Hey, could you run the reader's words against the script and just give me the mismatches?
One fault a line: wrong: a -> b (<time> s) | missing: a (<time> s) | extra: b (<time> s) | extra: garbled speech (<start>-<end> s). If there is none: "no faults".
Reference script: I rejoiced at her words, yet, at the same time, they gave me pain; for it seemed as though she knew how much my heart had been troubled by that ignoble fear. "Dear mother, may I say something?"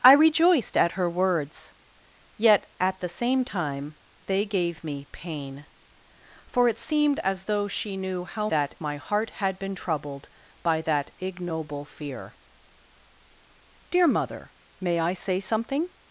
wrong: much -> that (8.5 s)